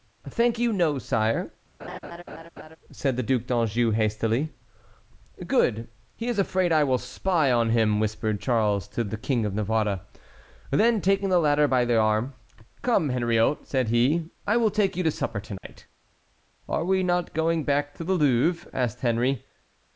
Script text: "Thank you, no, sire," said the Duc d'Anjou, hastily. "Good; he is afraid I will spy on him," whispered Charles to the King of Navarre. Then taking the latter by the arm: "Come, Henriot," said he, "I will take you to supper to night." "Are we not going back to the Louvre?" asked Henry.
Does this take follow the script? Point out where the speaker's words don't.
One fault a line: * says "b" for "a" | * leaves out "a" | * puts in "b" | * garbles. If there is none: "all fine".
all fine